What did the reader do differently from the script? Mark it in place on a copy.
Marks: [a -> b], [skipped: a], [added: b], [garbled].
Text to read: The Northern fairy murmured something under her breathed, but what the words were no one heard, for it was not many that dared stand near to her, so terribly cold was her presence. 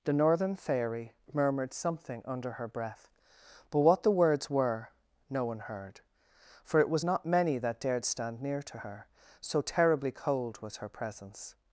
The Northern fairy murmured something under her [breathed, -> breath] but what the words were no one heard, for it was not many that dared stand near to her, so terribly cold was her presence.